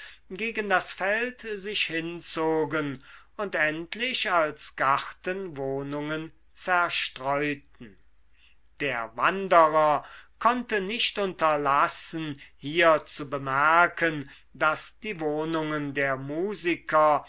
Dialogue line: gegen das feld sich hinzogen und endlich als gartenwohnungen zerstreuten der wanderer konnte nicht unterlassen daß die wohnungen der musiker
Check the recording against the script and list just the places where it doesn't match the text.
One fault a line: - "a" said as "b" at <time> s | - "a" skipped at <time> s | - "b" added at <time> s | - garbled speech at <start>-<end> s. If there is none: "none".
- "hier zu bemerken" added at 12.6 s